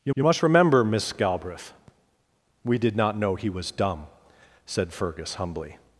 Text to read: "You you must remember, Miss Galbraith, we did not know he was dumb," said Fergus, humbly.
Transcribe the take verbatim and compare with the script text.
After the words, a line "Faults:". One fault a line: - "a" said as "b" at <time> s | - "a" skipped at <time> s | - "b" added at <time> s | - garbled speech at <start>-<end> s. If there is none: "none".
"You you must remember, Miss Galbraith, we did not know he was dumb," said Fergus, humbly.
Faults:
none